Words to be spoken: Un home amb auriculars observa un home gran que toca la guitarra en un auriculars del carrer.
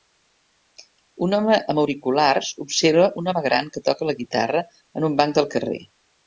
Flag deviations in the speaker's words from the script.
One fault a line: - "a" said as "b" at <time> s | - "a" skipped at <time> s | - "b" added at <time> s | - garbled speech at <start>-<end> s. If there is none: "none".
- "auriculars" said as "banc" at 5.2 s